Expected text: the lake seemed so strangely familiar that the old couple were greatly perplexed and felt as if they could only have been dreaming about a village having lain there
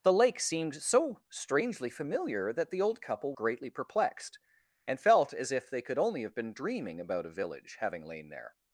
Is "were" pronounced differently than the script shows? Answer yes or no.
yes